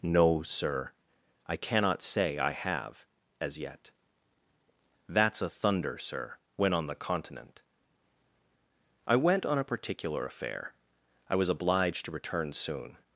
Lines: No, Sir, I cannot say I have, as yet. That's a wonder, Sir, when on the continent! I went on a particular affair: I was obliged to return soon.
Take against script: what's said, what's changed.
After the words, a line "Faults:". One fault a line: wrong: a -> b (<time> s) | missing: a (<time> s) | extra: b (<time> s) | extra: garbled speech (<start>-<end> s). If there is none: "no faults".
No, Sir, I cannot say I have, as yet. That's a thunder, Sir, when on the continent! I went on a particular affair: I was obliged to return soon.
Faults:
wrong: wonder -> thunder (5.5 s)